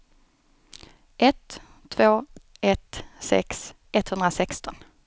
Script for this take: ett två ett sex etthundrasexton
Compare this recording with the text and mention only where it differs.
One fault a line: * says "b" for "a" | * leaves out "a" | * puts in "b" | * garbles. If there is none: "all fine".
all fine